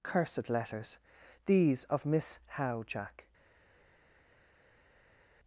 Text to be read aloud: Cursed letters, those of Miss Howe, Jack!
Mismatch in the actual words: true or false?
true